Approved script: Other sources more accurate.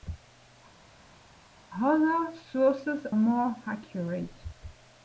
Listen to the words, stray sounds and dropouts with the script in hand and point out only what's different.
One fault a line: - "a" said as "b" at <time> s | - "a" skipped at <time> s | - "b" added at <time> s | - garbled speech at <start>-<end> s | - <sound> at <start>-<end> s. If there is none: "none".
none